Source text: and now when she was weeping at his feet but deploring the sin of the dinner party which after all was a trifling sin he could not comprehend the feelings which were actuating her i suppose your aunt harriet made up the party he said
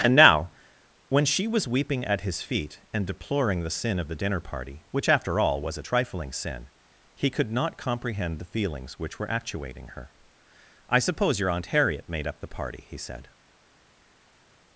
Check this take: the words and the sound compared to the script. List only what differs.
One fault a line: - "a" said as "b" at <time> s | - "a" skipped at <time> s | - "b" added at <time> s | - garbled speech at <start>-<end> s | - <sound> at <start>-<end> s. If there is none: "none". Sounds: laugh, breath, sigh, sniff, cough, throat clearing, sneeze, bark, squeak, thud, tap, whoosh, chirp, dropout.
- "but" said as "and" at 2.9 s